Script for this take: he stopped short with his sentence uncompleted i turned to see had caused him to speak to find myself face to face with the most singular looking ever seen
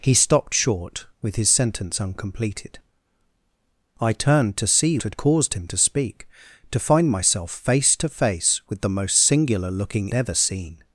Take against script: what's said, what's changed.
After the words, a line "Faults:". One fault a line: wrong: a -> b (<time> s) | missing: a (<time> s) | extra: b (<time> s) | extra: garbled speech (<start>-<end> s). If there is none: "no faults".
he stopped short with his sentence uncompleted i turned to see had caused him to speak to find myself face to face with the most singular looking ever seen
Faults:
no faults